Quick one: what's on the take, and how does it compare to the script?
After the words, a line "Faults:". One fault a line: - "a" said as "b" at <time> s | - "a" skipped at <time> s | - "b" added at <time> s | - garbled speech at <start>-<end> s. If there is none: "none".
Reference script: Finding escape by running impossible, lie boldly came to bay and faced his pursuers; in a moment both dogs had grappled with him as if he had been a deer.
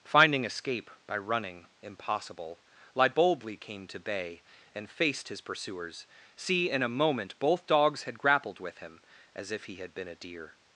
Finding escape by running impossible, lie boldly came to bay and faced his pursuers; see in a moment both dogs had grappled with him as if he had been a deer.
Faults:
- "see" added at 6.3 s